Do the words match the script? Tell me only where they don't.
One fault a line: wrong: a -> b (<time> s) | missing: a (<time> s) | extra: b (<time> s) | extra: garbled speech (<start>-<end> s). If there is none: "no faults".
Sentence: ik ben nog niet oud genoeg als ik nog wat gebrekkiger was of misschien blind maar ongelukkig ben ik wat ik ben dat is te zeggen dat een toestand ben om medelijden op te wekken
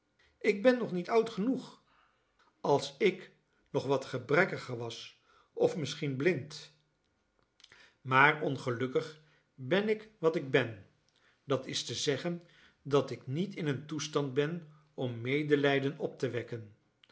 extra: ik niet in (13.1 s)